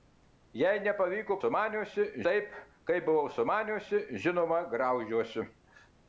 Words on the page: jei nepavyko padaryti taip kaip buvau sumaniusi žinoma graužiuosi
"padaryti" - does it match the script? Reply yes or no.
no